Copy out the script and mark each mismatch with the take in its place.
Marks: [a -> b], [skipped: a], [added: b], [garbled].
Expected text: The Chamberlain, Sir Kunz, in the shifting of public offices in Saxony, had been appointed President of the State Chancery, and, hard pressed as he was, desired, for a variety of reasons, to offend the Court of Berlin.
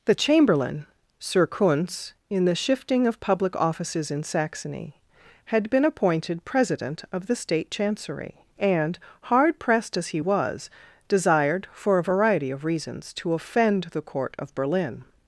The Chamberlain, Sir Kunz, in the shifting of public offices in Saxony, had been appointed President of the State Chancery, and, hard pressed as he was, desired, for a variety of reasons, to offend the Court of Berlin.